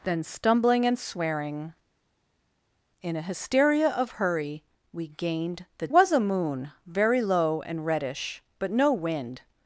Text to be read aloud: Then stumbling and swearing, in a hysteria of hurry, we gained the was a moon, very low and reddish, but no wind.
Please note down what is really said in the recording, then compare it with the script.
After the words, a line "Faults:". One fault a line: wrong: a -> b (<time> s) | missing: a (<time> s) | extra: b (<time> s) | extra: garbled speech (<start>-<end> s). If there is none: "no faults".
Then stumbling and swearing, in a hysteria of hurry, we gained the was a moon, very low and reddish, but no wind.
Faults:
no faults